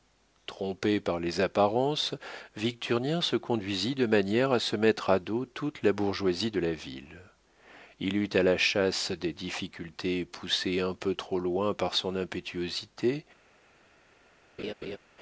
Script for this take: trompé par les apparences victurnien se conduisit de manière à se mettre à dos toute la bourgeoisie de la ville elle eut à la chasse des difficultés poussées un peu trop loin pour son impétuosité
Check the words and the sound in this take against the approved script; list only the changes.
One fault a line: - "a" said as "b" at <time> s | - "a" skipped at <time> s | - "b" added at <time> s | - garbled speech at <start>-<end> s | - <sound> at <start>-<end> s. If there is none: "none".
- "elle" said as "il" at 8.0 s
- "pour" said as "par" at 11.7 s
- laugh at 14.6-15.0 s